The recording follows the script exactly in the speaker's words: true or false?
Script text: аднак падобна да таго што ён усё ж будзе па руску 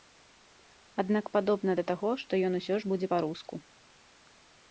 true